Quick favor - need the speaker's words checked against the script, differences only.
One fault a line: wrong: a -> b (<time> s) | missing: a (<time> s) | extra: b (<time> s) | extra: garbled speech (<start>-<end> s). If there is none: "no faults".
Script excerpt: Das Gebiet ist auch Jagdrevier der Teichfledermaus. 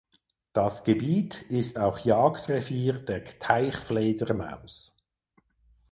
no faults